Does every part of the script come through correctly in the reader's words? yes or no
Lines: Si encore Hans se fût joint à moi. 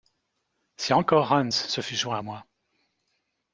yes